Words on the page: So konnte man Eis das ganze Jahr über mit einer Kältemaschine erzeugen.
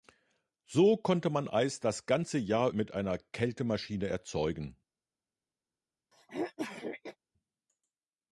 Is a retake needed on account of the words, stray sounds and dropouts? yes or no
yes